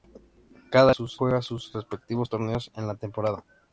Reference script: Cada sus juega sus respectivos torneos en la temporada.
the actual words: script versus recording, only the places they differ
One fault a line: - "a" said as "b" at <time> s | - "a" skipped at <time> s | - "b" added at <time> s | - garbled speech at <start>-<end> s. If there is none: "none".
none